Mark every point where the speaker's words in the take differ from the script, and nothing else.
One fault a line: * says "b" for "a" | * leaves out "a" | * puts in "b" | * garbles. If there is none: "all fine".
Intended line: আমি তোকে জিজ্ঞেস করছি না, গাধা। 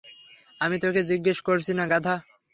all fine